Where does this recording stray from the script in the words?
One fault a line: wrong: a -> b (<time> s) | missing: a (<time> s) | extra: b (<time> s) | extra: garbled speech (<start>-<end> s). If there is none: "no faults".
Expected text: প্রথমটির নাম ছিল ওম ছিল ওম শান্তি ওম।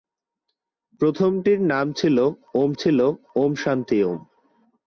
no faults